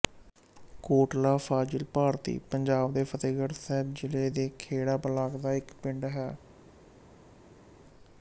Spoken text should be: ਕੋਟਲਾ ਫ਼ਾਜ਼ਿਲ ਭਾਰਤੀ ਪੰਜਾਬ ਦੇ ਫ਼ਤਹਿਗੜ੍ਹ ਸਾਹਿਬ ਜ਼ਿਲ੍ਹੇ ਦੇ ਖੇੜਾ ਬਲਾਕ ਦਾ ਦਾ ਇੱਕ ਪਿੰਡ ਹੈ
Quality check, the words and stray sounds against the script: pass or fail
fail